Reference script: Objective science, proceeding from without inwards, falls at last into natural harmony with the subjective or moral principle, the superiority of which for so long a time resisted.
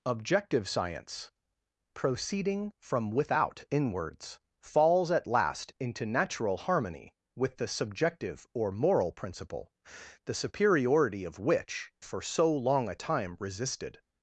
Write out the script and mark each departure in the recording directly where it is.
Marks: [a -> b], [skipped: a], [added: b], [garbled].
Objective science, proceeding from without inwards, falls at last into natural harmony with the subjective or moral principle, the superiority of which for so long a time resisted.